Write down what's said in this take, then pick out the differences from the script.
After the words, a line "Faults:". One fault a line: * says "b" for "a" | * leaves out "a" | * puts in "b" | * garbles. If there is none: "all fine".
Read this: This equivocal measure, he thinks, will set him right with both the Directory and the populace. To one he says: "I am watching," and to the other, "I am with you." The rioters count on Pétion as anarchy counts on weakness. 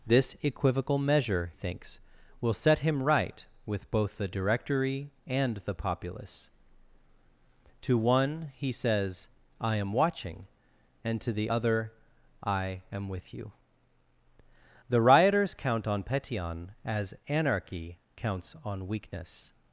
This equivocal measure, thinks, will set him right with both the Directory and the populace. To one he says: "I am watching," and to the other, "I am with you." The rioters count on Pétion as anarchy counts on weakness.
Faults:
* leaves out "he"